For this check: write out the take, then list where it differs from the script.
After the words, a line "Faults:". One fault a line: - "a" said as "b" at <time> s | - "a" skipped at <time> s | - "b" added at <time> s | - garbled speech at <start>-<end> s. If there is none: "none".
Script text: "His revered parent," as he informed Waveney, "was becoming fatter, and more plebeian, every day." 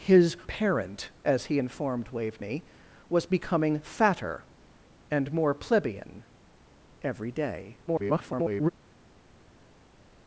"His parent," as he informed Waveney, "was becoming fatter, and more plebeian, every day." [garbled]
Faults:
- "revered" skipped at 0.3 s
- garbled speech at 7.9-8.7 s